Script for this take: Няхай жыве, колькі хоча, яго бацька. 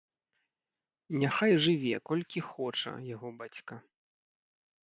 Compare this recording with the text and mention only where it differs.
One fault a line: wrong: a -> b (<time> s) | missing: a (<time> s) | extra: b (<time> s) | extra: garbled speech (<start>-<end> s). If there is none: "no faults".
no faults